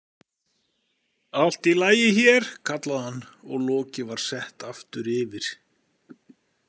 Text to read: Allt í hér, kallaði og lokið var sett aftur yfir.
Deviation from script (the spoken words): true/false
true